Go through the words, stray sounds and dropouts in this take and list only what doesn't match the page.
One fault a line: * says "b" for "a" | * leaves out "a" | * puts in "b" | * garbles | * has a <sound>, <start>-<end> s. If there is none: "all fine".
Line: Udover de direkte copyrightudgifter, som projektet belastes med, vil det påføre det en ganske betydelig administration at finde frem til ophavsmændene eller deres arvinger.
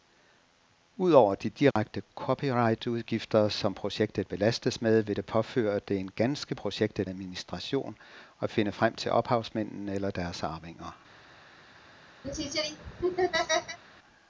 * has a dropout, 1.7-1.8 s
* says "projektet" for "betydelig"
* has a laugh, 12.2-13.8 s